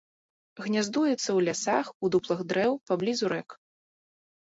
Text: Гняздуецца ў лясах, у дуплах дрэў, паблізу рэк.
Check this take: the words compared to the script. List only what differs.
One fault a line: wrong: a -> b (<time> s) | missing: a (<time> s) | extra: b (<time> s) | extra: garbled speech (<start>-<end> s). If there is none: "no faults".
no faults